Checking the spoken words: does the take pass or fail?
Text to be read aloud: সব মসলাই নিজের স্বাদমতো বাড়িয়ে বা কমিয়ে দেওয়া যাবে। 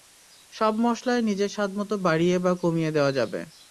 pass